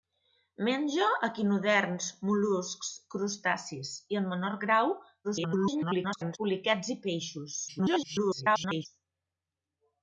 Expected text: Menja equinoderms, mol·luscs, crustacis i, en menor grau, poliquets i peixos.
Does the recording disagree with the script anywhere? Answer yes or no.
yes